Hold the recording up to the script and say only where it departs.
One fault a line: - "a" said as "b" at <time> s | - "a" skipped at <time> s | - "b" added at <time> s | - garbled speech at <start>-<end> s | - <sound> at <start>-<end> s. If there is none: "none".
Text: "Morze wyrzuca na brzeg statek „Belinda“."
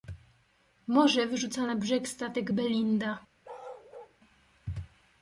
- bark at 3.4-4.2 s